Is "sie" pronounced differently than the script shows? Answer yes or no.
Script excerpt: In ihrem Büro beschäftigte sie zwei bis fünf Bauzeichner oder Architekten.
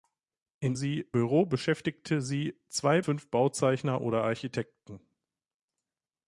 no